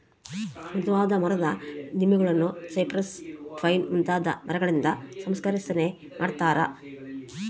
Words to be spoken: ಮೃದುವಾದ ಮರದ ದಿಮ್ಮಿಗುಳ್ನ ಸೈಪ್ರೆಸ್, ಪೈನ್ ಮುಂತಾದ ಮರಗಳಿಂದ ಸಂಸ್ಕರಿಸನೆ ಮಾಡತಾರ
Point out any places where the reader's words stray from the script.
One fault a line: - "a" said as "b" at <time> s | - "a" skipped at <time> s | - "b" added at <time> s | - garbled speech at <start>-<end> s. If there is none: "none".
none